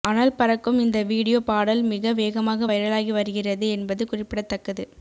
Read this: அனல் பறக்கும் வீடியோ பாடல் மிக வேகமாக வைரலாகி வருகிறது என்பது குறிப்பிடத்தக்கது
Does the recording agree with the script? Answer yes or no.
no